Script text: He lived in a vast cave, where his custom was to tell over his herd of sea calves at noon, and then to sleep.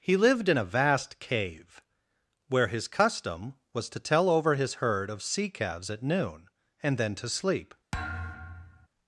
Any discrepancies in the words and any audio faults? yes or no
yes